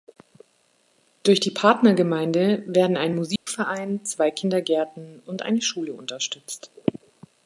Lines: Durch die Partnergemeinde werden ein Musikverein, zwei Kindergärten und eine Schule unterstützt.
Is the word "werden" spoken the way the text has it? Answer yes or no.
yes